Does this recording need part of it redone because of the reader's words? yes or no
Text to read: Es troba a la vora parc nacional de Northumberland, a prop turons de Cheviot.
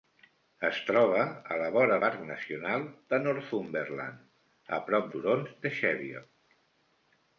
no